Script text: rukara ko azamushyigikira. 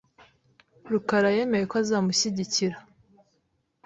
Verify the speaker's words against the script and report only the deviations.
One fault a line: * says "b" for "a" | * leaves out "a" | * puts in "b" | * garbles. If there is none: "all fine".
* puts in "yemeye"